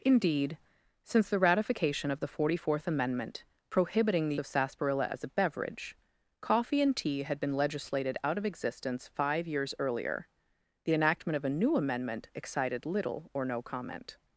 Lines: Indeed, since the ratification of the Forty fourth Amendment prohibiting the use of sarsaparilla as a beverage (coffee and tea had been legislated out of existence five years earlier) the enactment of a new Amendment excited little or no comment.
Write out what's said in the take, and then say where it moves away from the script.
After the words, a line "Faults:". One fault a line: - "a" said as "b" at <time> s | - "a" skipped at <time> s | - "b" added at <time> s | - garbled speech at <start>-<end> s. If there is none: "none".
Indeed, since the ratification of the Forty fourth Amendment prohibiting the of sarsaparilla as a beverage (coffee and tea had been legislated out of existence five years earlier) the enactment of a new Amendment excited little or no comment.
Faults:
- "use" skipped at 4.4 s